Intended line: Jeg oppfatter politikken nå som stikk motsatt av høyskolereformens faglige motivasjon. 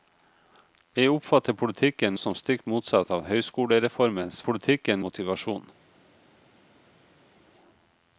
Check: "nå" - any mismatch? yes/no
yes